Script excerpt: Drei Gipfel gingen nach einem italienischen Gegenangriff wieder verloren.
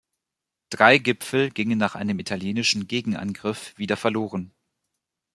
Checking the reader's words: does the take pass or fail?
pass